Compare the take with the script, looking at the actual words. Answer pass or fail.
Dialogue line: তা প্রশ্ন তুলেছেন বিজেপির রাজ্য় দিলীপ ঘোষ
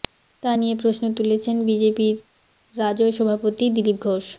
fail